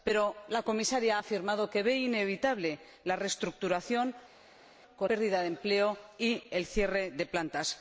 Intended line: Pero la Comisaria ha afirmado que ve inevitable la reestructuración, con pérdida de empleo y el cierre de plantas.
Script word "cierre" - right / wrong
right